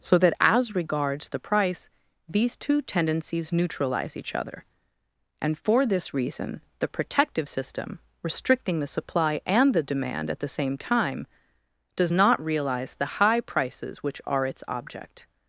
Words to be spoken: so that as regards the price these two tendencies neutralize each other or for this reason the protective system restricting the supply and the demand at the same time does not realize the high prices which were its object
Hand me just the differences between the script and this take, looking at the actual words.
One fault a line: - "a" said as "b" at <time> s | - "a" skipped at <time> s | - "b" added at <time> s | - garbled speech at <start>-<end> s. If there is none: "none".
- "or" said as "and" at 5.4 s
- "were" said as "are" at 14.3 s